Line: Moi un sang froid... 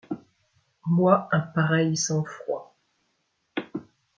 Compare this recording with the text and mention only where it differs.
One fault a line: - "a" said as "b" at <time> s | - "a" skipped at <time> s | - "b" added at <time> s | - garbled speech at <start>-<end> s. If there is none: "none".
- "pareil" added at 1.4 s